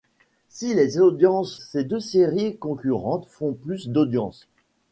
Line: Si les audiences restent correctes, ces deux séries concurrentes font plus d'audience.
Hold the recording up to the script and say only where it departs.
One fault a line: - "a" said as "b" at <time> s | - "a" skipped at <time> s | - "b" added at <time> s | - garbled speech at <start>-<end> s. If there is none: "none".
- "restent correctes" skipped at 1.6 s